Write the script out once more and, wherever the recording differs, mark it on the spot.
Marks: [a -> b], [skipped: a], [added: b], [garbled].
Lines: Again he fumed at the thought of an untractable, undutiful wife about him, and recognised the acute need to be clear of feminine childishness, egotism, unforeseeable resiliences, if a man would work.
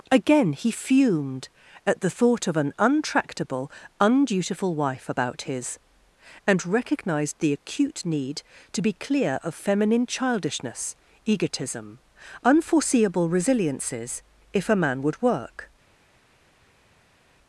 Again he fumed at the thought of an untractable, undutiful wife about [him, -> his] and recognised the acute need to be clear of feminine childishness, egotism, unforeseeable resiliences, if a man would work.